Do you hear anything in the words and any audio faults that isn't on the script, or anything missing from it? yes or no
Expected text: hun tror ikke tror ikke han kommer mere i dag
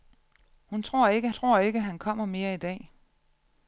no